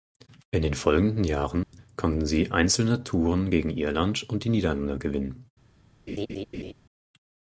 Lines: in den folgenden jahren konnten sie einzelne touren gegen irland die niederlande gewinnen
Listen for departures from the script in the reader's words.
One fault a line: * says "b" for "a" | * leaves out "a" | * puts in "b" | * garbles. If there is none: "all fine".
* puts in "und"